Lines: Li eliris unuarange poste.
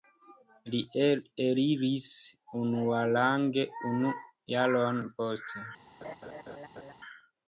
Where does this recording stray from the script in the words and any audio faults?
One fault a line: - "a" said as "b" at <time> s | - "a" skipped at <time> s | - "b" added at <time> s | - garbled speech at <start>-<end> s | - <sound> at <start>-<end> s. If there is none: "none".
- "unu jaron" added at 3.9 s
- laugh at 6.0-6.9 s